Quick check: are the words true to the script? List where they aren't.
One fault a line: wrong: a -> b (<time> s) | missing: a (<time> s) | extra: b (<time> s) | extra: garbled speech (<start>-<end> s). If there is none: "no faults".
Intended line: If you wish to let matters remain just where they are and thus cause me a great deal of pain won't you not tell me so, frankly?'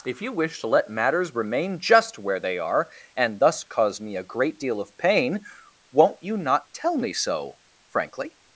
no faults